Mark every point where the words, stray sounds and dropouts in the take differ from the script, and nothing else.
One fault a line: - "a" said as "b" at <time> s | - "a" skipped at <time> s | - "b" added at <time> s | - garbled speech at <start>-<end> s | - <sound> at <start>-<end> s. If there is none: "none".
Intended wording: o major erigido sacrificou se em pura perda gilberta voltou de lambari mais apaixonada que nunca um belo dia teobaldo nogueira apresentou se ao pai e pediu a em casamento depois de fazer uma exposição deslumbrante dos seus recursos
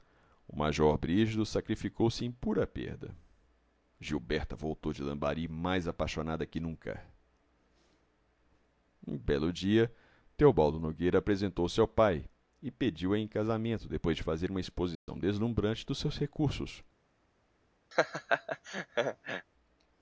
- dropout at 14.9-15.1 s
- laugh at 17.9-19.5 s